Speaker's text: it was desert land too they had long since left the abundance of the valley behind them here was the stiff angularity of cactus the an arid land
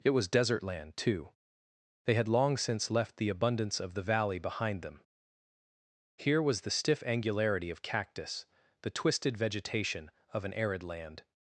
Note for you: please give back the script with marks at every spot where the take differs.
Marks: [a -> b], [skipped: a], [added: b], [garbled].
it was desert land too they had long since left the abundance of the valley behind them here was the stiff angularity of cactus the [added: twisted vegetation of] an arid land